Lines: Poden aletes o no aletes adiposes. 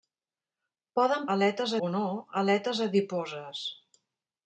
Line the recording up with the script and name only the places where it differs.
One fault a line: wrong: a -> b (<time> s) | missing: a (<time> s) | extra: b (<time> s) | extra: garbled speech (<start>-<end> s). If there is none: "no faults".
no faults